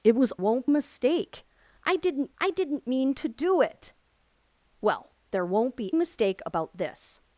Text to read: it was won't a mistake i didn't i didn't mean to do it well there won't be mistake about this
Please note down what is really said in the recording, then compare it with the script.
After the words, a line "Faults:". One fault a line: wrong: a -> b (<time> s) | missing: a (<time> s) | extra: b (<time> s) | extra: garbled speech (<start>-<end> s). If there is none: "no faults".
it was won't a mistake i didn't i didn't mean to do it well there won't be mistake about this
Faults:
no faults